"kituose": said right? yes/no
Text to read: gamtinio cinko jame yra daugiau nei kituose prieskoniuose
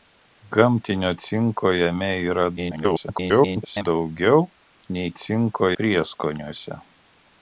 no